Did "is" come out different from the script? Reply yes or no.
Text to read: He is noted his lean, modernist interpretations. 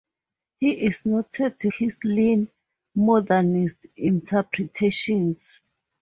no